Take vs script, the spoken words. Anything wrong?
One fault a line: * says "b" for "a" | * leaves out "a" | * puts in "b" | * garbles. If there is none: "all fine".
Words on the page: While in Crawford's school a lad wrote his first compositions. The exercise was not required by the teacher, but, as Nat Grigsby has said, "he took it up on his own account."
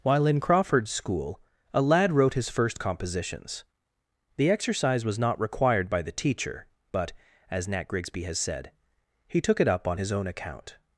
all fine